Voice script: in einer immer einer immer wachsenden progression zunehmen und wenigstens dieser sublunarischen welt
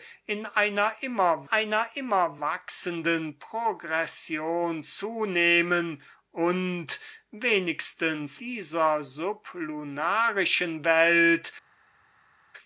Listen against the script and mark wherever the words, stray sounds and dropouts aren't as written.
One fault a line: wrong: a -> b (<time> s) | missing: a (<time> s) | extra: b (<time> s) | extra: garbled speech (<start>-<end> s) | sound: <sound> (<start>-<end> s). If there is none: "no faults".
no faults